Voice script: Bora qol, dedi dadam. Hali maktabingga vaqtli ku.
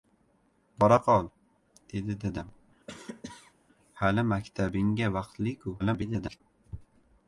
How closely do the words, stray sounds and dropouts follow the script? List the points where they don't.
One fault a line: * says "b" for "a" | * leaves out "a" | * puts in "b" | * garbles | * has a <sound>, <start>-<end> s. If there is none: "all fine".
* has a cough, 2.9-3.5 s
* garbles